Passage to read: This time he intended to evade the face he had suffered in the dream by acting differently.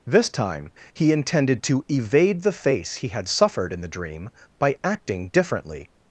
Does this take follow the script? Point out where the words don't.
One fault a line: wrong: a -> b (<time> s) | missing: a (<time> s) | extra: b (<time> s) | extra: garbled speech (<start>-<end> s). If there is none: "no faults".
no faults